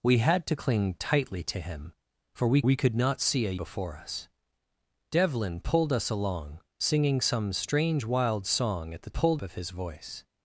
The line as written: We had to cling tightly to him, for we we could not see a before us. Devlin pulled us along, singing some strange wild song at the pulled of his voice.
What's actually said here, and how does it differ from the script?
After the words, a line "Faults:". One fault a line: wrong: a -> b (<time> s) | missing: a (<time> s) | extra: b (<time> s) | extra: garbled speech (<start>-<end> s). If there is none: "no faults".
We had to cling tightly to him, for we we could not see a before us. Devlin pulled us along, singing some strange wild song at the pulled of his voice.
Faults:
no faults